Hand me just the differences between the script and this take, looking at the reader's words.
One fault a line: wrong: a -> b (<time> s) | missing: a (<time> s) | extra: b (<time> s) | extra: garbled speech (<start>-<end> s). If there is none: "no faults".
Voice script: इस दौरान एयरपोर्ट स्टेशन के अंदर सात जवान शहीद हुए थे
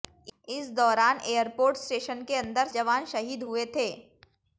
missing: सात (2.7 s)